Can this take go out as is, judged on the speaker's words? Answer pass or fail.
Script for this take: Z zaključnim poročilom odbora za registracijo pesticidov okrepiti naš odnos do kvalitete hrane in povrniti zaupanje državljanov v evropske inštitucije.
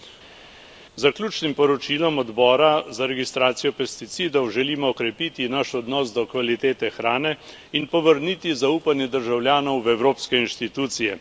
fail